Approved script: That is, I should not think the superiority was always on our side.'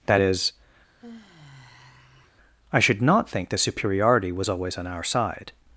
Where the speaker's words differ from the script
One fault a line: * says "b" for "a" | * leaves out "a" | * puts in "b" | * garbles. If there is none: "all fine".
all fine